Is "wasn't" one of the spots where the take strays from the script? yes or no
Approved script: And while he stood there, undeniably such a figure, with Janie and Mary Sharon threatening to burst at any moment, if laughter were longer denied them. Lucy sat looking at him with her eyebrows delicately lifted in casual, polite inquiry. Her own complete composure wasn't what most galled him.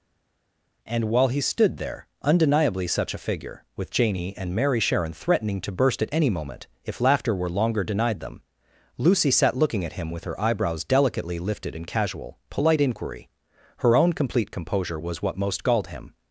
yes